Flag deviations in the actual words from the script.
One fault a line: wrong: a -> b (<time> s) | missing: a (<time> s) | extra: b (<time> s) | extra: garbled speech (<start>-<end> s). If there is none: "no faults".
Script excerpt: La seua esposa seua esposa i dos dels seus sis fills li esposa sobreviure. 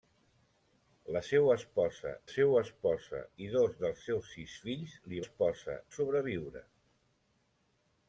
no faults